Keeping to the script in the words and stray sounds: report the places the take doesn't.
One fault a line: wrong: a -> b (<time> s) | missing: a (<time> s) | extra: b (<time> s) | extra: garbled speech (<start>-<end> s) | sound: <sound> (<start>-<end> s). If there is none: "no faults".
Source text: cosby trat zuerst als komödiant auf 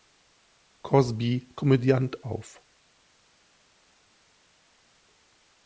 missing: trat zuerst als (1.5 s)